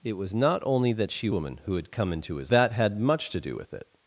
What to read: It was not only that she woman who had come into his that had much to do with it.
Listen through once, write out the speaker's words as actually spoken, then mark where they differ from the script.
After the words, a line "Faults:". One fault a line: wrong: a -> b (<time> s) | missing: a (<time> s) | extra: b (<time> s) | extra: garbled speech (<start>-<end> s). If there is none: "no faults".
It was not only that she woman who had come into his that had much to do with it.
Faults:
no faults